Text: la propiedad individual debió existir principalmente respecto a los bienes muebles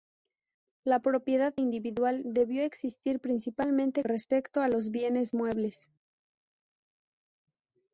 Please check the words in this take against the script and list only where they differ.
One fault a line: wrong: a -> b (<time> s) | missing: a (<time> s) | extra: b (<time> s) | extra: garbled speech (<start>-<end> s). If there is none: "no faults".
no faults